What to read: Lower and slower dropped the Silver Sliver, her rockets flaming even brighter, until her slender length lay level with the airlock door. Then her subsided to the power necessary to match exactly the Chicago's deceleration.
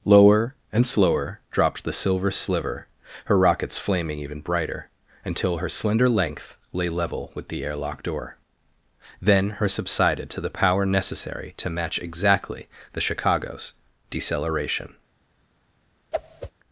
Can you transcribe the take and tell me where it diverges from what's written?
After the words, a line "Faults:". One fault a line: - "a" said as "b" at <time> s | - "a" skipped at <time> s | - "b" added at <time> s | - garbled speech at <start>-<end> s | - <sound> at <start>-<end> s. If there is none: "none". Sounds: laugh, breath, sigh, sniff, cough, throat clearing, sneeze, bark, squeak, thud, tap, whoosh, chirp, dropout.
Lower and slower dropped the Silver Sliver, her rockets flaming even brighter, until her slender length lay level with the airlock door. Then her subsided to the power necessary to match exactly the Chicago's deceleration.
Faults:
- whoosh at 16.1-16.5 s